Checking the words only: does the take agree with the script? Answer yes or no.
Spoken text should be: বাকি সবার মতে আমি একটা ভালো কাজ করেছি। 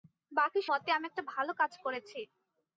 no